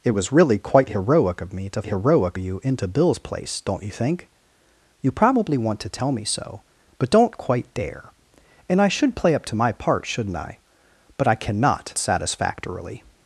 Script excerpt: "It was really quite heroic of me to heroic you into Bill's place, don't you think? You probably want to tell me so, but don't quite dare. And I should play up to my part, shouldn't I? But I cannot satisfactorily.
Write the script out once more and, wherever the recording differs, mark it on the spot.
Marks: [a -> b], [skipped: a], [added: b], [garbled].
"It was really quite heroic of me to heroic you into Bill's place, don't you think? You probably want to tell me so, but don't quite dare. And I should play up to my part, shouldn't I? But I cannot satisfactorily.